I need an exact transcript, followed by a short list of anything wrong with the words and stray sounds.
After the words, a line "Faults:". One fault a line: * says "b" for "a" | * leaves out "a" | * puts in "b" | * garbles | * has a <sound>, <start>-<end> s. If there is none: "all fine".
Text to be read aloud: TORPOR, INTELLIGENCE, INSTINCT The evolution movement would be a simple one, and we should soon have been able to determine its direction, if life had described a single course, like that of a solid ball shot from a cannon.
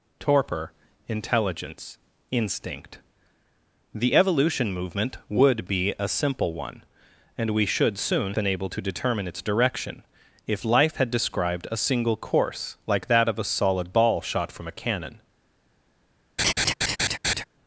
TORPOR, INTELLIGENCE, INSTINCT The evolution movement would be a simple one, and we should soon been able to determine its direction, if life had described a single course, like that of a solid ball shot from a cannon.
Faults:
* leaves out "have"
* has a laugh, 16.4-17.4 s